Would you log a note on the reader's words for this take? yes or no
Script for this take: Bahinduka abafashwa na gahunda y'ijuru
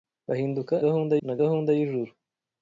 yes